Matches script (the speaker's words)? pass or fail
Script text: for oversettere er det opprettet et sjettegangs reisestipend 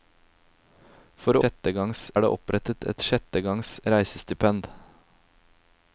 fail